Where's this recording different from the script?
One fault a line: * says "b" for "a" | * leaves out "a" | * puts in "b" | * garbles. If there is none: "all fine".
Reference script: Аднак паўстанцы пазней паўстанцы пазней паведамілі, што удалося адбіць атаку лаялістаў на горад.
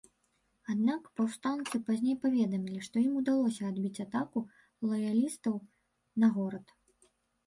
* leaves out "паўстанцы пазней"
* puts in "ім"